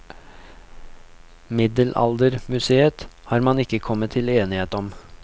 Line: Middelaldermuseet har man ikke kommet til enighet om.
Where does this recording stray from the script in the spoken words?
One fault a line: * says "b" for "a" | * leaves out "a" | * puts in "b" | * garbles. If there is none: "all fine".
all fine